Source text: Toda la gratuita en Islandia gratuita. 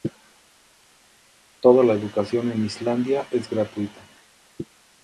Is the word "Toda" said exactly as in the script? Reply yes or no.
yes